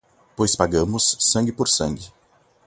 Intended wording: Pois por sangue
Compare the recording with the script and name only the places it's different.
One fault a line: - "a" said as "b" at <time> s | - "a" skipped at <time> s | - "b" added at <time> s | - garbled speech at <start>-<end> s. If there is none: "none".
- "pagamos sangue" added at 0.5 s